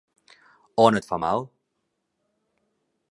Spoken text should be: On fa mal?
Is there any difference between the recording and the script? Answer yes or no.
yes